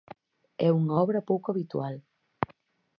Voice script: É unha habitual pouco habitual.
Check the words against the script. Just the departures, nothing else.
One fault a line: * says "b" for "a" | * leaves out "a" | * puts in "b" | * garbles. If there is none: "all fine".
* says "obra" for "habitual"